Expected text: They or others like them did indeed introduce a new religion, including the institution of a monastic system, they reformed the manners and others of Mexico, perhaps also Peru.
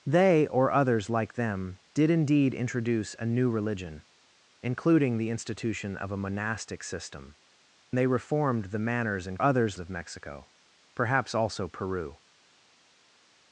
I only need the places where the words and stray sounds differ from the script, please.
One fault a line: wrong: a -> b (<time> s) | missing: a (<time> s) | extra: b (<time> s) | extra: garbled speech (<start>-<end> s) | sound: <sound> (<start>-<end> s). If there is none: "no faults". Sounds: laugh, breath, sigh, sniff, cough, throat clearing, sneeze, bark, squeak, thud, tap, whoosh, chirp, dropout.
no faults